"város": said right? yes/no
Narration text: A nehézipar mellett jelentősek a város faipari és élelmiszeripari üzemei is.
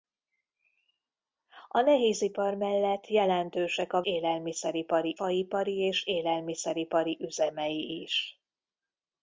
no